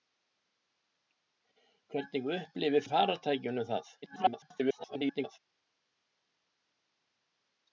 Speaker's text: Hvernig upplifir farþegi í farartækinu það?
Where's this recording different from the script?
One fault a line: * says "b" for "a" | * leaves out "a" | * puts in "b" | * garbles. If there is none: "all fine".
* leaves out "farþegi"
* garbles